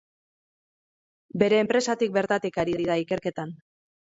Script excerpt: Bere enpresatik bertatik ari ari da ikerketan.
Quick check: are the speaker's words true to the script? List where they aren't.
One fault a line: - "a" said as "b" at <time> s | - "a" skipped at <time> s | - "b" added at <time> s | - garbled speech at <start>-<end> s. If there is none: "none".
none